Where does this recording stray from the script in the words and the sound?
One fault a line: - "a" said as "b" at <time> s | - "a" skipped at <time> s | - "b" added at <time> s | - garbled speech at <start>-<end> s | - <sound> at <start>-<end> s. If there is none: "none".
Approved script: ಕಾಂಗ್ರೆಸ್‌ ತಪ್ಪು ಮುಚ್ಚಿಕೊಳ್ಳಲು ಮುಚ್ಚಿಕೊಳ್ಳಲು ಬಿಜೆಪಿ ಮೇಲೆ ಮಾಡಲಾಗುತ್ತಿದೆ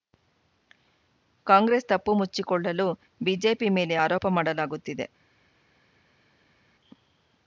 - "ಮುಚ್ಚಿಕೊಳ್ಳಲು" skipped at 2.9 s
- "ಆರೋಪ" added at 4.0 s